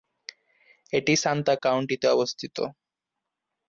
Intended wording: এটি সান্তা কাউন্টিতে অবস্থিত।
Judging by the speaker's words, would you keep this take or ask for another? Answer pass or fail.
pass